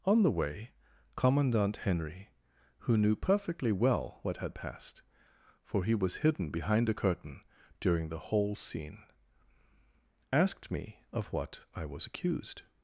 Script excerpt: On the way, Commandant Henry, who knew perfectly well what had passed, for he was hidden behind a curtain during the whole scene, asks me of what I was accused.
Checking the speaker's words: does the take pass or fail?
fail